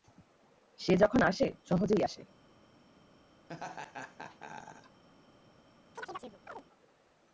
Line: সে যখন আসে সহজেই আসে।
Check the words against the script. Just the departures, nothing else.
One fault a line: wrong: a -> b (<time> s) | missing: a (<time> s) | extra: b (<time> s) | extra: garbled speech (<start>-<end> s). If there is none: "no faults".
no faults